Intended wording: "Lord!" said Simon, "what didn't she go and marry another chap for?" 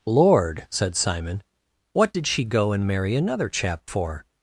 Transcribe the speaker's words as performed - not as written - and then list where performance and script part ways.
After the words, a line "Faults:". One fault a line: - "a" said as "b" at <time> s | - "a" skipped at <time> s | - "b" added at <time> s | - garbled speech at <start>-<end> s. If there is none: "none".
"Lord!" said Simon, "what did she go and marry another chap for?"
Faults:
- "didn't" said as "did" at 2.1 s